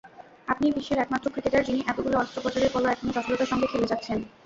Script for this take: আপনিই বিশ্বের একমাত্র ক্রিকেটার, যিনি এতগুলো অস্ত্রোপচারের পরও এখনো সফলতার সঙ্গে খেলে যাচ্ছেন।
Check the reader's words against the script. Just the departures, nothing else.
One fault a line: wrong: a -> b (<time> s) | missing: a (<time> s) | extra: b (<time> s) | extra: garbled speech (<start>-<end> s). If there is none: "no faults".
no faults